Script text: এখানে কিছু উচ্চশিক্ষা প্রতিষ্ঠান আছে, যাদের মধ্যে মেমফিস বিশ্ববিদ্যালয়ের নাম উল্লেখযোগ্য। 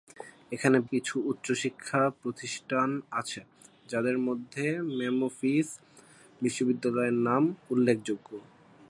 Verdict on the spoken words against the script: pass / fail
pass